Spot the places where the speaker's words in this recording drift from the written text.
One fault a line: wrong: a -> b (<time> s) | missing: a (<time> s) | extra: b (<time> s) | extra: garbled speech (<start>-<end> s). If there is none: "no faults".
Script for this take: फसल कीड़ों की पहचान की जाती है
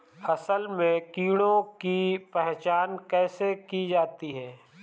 extra: में (0.7 s)
extra: कैसे (3.0 s)